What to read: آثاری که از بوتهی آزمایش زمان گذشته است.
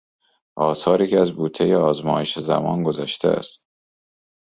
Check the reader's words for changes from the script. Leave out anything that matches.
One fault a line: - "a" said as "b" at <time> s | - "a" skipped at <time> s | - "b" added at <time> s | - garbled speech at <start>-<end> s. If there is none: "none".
none